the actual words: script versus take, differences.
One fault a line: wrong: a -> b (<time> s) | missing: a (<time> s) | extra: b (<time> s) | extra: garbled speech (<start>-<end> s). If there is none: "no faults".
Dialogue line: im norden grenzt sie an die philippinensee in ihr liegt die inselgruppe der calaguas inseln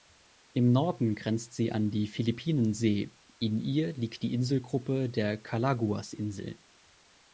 no faults